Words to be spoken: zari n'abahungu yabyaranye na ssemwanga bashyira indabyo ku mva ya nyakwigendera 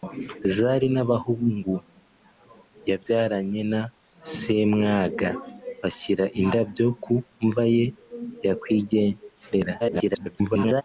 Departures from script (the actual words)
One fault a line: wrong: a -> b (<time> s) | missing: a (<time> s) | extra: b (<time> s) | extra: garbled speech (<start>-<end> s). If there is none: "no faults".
extra: garbled speech (9.8-10.8 s)